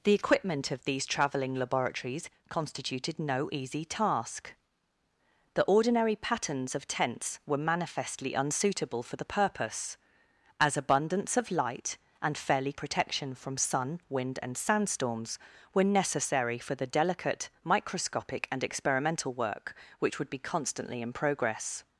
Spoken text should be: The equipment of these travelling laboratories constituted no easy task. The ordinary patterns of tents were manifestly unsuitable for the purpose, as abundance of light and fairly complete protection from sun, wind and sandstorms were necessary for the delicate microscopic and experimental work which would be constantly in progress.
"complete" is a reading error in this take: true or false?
true